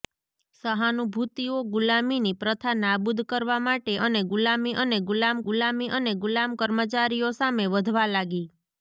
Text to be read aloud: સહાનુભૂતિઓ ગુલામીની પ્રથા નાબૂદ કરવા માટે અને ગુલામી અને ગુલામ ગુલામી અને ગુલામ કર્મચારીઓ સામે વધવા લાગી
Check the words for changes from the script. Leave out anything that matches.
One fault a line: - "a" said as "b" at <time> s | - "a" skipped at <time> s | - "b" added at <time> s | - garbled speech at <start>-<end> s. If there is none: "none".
none